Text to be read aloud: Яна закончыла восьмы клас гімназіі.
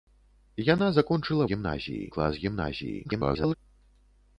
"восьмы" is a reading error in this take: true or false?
true